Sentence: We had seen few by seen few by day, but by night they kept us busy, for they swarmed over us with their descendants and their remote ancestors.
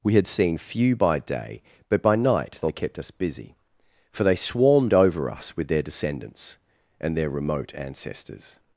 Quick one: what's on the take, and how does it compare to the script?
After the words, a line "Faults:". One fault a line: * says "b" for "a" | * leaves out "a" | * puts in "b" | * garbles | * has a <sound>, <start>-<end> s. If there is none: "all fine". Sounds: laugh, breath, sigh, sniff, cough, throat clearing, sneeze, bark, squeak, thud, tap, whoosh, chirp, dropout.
We had seen few by day, but by night they kept us busy, for they swarmed over us with their descendants and their remote ancestors.
Faults:
* leaves out "seen few by"